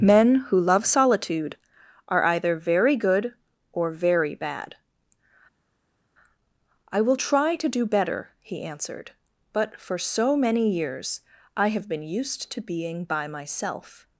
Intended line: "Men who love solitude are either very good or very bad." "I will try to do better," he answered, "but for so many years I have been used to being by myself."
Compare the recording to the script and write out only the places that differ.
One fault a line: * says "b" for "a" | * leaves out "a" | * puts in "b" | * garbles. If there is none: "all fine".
all fine